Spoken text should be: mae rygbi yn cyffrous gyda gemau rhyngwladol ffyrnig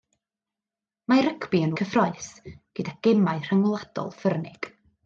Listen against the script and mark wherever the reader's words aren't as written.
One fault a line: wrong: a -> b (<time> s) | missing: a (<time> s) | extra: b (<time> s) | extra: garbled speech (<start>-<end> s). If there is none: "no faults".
no faults